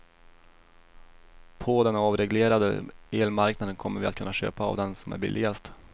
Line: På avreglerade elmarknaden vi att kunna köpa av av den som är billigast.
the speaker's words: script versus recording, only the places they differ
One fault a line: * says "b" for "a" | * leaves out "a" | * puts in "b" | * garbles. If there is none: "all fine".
* puts in "den"
* puts in "kommer"
* leaves out "av"